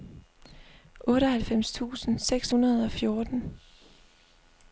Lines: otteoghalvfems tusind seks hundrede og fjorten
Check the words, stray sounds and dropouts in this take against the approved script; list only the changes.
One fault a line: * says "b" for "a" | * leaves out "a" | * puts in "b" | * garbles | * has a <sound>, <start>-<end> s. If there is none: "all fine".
all fine